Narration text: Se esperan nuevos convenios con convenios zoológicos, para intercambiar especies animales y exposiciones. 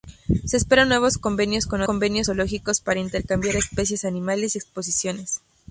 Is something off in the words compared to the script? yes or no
no